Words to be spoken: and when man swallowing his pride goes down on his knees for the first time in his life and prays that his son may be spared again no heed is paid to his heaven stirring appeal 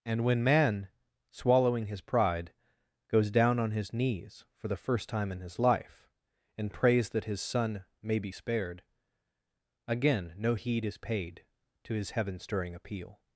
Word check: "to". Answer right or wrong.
right